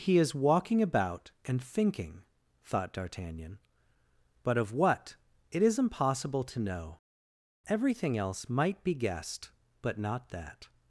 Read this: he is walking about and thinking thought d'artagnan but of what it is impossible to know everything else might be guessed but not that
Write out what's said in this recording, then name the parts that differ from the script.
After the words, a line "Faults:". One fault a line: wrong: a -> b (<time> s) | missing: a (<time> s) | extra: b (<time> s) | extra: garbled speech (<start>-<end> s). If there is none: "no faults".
he is walking about and thinking thought d'artagnan but of what it is impossible to know everything else might be guessed but not that
Faults:
no faults